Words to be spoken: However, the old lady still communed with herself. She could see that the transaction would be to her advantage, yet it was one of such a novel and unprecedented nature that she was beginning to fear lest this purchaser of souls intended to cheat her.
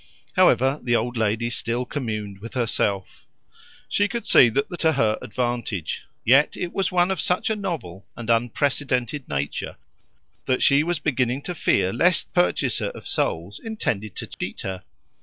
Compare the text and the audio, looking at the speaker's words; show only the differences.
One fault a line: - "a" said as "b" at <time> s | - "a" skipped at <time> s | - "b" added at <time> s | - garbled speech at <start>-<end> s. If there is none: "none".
- "transaction would be" skipped at 4.8 s
- "this" skipped at 12.3 s